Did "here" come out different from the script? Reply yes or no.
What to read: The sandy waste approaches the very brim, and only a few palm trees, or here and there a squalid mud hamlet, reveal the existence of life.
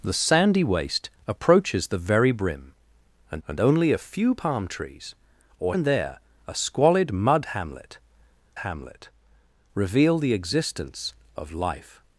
yes